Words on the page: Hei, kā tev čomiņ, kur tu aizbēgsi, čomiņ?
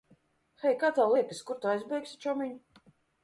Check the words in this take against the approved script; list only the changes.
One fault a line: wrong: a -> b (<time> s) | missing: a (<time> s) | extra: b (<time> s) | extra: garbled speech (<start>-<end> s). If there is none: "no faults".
wrong: čomiņ -> liekas (1.1 s)